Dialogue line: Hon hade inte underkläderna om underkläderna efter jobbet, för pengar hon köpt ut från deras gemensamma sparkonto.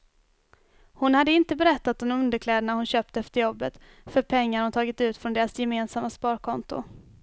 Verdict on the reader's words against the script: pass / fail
fail